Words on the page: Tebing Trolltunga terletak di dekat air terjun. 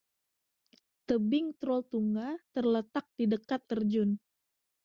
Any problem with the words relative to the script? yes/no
yes